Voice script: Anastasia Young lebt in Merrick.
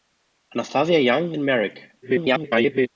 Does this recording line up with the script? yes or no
no